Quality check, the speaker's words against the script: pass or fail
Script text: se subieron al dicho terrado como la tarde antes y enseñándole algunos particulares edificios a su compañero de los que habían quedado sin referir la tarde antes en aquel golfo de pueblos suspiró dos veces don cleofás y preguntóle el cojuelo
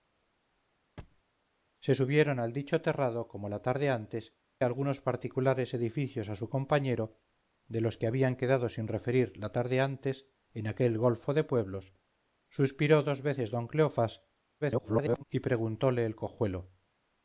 fail